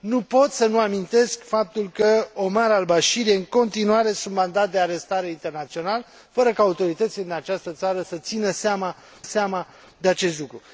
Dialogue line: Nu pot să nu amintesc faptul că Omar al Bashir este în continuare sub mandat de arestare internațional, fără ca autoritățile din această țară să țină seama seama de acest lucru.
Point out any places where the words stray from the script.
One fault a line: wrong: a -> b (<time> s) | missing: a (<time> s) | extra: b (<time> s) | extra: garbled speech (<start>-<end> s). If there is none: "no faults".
no faults